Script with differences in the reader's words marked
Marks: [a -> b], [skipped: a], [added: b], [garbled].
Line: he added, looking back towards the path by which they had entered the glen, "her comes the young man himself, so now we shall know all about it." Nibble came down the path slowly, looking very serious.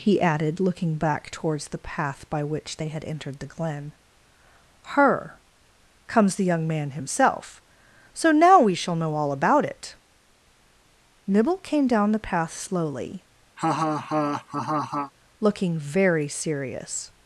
he added, looking back towards the path by which they had entered the glen, "her comes the young man himself, so now we shall know all about it." Nibble came down the path slowly, looking very serious.